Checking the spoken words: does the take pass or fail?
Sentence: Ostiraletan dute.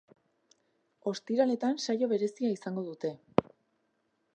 fail